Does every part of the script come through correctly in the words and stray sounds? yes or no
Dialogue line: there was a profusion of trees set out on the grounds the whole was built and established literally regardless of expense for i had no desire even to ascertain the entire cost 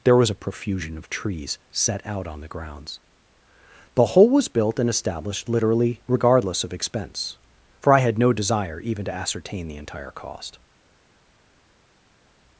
yes